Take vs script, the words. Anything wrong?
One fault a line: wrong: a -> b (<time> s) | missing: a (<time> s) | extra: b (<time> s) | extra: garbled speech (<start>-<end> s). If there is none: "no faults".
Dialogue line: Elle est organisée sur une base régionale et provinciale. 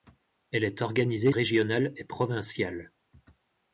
missing: sur une base (1.3 s)